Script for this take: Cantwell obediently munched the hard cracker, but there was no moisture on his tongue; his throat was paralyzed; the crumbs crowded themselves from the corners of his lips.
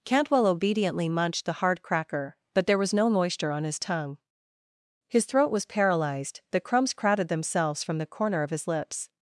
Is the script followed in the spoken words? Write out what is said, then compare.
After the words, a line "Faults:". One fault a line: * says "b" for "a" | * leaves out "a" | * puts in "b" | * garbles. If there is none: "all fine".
Cantwell obediently munched the hard cracker, but there was no moisture on his tongue; his throat was paralyzed; the crumbs crowded themselves from the corner of his lips.
Faults:
* says "corner" for "corners"